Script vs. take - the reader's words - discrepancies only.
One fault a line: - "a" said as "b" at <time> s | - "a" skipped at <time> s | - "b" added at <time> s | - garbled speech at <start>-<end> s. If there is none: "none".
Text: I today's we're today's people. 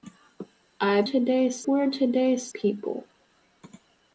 none